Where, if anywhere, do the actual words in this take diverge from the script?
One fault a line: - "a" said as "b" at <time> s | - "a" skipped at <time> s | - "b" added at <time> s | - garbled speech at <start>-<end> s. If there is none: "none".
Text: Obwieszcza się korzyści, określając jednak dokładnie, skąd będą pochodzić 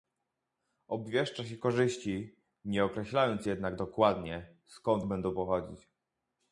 - "nie" added at 2.6 s